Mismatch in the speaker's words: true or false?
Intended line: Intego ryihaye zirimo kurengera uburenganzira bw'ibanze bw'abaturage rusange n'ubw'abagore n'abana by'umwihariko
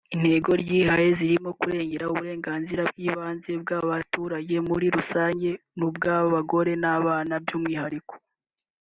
true